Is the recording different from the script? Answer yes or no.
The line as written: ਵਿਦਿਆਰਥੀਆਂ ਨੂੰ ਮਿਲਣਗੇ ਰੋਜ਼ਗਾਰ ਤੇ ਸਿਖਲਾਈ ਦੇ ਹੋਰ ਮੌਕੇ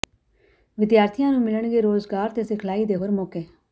no